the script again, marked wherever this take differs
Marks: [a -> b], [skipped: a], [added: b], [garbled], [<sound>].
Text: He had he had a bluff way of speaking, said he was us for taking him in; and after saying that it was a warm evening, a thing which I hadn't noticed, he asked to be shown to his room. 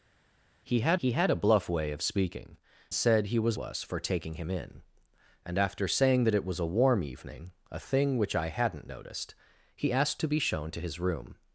He had he had a bluff way of speaking, said he was us for taking him in; and after saying that it was a warm evening, a thing which I hadn't noticed, he asked to be shown to his room.